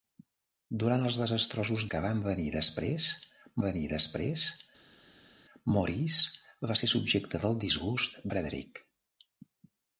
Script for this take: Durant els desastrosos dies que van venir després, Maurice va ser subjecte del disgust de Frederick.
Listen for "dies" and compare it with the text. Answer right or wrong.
wrong